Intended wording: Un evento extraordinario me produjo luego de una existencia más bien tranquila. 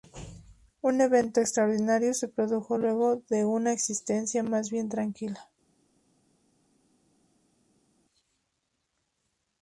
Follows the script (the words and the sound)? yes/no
no